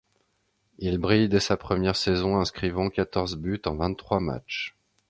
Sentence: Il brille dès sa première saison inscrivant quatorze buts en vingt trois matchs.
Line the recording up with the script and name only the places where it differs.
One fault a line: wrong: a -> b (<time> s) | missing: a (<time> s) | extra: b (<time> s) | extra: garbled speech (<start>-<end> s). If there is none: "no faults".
no faults